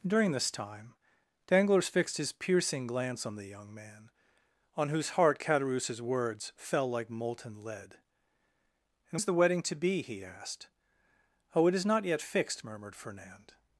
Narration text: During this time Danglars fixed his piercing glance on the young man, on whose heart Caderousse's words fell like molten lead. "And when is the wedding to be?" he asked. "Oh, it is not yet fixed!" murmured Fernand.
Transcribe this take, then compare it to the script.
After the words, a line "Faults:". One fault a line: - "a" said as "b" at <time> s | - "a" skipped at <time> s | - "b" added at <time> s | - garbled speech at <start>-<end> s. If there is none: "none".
During this time Danglars fixed his piercing glance on the young man, on whose heart Caderousse's words fell like molten lead. "And is the wedding to be?" he asked. "Oh, it is not yet fixed!" murmured Fernand.
Faults:
- "when" skipped at 9.2 s